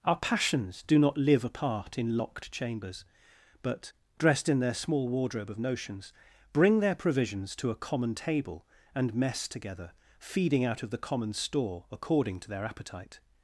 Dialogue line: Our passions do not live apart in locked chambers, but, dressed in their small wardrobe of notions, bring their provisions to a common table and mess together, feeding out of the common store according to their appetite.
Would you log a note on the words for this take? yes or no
no